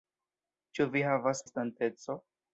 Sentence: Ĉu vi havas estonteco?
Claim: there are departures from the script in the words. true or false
false